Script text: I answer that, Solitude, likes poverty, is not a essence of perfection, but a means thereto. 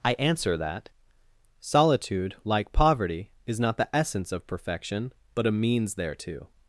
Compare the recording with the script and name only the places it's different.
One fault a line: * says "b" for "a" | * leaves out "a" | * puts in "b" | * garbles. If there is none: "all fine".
* says "like" for "likes"
* says "the" for "a"